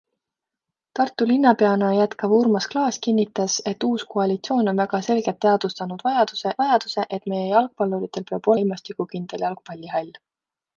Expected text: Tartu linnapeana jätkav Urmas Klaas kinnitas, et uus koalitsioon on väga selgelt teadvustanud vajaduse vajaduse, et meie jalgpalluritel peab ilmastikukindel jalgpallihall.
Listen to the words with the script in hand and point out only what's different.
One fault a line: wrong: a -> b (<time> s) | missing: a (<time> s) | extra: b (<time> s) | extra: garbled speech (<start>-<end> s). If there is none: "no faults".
no faults